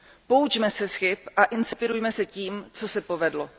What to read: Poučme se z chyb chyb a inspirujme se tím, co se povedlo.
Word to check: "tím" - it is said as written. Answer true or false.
true